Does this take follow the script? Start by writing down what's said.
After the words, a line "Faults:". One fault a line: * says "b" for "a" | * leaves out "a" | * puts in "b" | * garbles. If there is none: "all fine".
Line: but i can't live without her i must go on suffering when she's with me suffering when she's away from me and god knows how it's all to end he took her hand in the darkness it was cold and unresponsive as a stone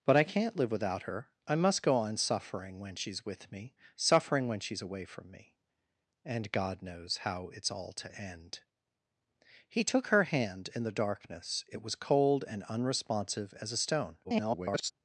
but i can't live without her i must go on suffering when she's with me suffering when she's away from me and god knows how it's all to end he took her hand in the darkness it was cold and unresponsive as a stone [garbled]
Faults:
* garbles